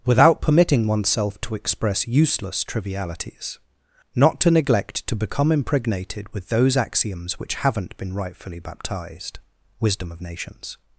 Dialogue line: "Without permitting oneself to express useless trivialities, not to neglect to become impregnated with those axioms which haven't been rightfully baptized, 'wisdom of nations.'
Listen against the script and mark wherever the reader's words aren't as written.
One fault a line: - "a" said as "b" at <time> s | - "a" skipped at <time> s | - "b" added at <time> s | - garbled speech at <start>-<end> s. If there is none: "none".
none